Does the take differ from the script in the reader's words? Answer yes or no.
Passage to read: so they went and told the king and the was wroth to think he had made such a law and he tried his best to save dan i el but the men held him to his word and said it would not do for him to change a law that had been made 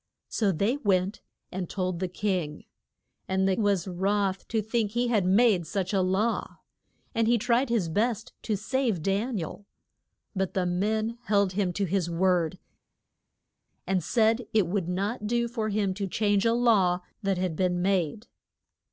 no